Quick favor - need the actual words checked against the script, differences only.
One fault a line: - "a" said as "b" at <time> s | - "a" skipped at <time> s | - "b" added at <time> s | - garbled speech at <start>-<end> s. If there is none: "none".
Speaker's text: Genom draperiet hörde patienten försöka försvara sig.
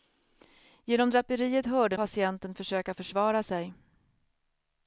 none